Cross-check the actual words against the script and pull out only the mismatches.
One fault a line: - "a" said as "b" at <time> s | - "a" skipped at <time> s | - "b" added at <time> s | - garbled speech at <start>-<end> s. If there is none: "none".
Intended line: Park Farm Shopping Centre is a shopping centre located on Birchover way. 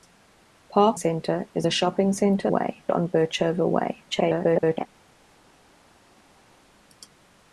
- "Farm Shopping" skipped at 1.0 s
- "located" said as "way" at 2.5 s
- garbled speech at 4.1-4.9 s